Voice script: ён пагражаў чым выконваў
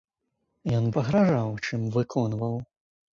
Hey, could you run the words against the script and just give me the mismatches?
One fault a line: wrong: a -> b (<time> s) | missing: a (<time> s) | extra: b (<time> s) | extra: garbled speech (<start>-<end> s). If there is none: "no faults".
no faults